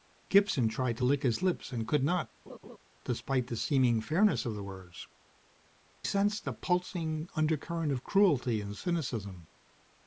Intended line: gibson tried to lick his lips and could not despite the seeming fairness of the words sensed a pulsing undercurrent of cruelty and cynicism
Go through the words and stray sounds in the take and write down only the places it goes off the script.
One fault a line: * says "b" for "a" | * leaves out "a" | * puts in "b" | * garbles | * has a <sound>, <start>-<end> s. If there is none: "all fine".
* has a laugh, 2.5-2.8 s